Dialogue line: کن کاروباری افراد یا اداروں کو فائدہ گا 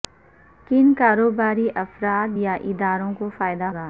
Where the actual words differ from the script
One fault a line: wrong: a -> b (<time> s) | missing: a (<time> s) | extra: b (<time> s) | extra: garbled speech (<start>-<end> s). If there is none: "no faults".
no faults